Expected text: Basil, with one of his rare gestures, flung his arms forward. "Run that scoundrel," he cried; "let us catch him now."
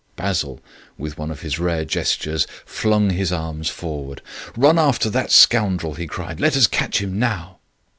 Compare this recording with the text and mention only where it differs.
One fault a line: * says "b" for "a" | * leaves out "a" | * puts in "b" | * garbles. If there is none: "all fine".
* puts in "after"